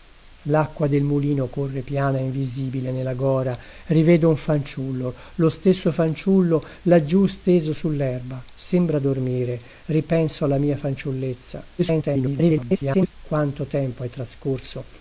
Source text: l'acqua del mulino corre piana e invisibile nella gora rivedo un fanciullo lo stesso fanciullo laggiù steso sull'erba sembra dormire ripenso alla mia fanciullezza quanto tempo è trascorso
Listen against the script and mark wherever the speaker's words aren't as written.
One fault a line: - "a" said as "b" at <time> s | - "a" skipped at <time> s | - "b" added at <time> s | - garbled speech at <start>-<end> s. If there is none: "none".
- garbled speech at 11.8-13.1 s